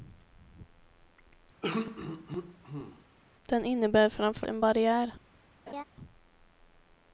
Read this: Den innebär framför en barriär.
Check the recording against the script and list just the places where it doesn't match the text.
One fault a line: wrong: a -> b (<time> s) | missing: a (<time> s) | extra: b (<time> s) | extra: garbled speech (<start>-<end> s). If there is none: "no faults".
no faults